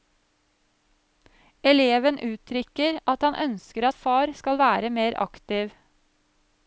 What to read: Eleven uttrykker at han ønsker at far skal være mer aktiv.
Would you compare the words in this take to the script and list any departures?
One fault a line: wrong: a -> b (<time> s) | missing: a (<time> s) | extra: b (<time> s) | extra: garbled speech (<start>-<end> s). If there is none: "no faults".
no faults